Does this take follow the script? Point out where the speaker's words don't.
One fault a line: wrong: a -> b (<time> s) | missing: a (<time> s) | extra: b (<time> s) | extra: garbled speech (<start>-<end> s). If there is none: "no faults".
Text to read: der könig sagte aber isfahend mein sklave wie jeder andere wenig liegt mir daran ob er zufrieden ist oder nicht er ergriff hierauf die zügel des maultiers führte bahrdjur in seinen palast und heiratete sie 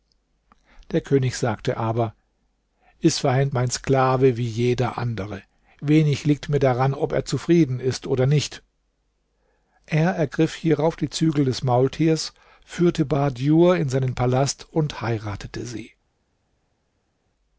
no faults